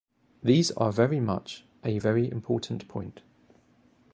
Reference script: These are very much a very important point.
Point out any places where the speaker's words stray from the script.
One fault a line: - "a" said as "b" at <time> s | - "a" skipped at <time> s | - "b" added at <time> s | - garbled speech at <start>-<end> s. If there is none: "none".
none